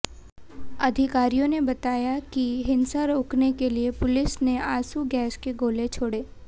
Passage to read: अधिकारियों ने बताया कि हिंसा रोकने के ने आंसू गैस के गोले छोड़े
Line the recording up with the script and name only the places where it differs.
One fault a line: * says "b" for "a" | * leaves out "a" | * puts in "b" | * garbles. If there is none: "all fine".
* puts in "लिए पुलिस"